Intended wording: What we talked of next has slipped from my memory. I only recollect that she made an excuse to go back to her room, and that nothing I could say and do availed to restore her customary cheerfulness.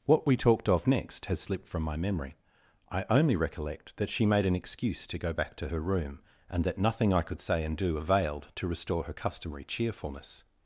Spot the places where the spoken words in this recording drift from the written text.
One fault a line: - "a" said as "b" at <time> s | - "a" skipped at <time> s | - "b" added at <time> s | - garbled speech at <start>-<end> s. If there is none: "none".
none